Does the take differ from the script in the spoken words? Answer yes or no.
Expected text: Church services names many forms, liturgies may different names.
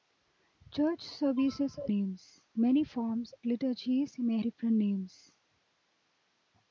no